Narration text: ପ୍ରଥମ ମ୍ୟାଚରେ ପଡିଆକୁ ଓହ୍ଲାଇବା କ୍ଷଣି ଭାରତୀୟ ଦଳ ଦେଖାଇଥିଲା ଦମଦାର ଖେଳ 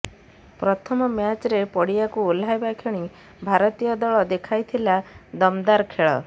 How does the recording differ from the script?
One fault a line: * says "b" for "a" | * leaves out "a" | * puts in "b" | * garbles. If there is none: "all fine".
all fine